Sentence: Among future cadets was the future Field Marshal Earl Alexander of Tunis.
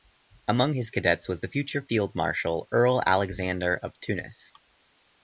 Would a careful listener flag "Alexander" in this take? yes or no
no